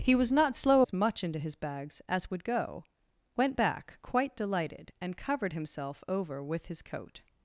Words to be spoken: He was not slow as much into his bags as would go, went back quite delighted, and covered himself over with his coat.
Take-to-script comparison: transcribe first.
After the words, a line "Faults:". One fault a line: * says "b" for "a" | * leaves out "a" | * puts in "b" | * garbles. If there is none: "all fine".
He was not slow as much into his bags as would go, went back quite delighted, and covered himself over with his coat.
Faults:
all fine